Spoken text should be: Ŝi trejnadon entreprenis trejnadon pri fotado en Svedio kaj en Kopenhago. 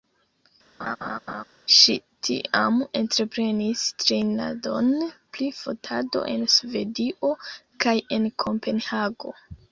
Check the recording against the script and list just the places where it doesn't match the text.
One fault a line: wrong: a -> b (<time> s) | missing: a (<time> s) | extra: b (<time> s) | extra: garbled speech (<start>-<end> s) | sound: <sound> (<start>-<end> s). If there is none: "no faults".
sound: laugh (0.8-1.4 s)
wrong: trejnadon -> tiam (2.3 s)